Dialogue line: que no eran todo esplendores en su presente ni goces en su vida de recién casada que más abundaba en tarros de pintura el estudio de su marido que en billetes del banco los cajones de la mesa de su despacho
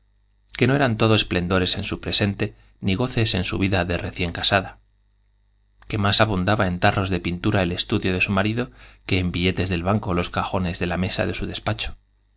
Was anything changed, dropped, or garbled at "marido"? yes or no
no